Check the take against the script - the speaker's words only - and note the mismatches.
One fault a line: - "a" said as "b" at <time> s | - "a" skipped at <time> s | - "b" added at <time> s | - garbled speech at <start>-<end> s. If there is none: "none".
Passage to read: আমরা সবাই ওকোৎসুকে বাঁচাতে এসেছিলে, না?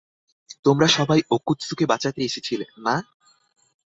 - "আমরা" said as "তোমরা" at 0.7 s